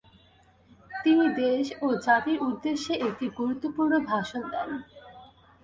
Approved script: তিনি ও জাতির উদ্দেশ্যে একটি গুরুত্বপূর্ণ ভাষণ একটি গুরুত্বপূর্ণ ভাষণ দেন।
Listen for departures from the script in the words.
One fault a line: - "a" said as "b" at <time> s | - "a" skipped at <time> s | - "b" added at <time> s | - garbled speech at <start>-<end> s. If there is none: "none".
- "দেশ" added at 1.4 s
- "একটি গুরুত্বপূর্ণ ভাষণ" skipped at 4.4 s